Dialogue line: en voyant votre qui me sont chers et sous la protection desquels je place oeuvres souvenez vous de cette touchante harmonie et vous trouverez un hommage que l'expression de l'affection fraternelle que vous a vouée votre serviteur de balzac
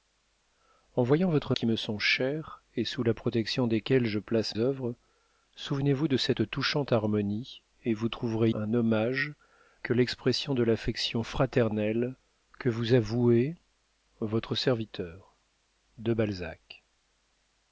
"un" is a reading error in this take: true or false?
false